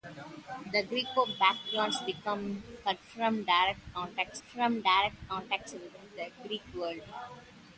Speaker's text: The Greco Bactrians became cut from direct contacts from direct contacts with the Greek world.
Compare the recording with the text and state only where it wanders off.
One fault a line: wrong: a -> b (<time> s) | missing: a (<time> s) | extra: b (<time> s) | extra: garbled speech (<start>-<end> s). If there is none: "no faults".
no faults